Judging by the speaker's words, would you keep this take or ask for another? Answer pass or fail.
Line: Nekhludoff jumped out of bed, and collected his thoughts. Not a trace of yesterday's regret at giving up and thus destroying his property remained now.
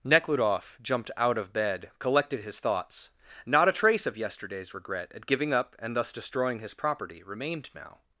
fail